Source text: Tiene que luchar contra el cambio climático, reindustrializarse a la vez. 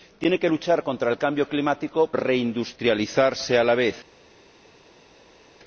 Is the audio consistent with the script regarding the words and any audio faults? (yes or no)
yes